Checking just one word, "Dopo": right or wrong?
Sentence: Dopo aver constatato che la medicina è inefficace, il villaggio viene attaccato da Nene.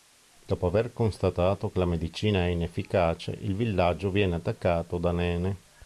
right